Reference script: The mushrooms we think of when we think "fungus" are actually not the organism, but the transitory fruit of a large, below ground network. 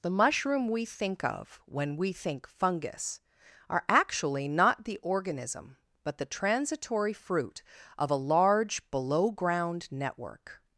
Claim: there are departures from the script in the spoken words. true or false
true